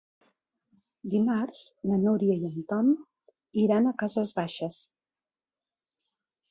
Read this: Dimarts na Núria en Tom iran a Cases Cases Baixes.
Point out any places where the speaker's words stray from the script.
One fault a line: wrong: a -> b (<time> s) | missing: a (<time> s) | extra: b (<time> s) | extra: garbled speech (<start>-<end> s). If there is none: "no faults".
extra: i (2.4 s)
missing: Cases (4.3 s)